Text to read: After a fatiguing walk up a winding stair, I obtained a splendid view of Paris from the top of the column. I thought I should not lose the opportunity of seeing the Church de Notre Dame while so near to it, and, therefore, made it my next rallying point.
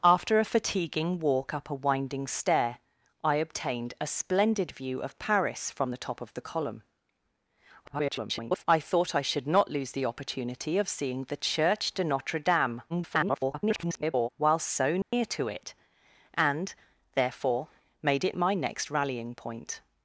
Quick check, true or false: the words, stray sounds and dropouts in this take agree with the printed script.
false